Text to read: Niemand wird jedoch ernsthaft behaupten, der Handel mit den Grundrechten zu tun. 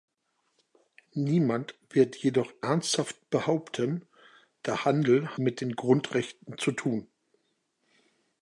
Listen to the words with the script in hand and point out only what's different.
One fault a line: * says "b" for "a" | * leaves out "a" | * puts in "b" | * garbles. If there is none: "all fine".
all fine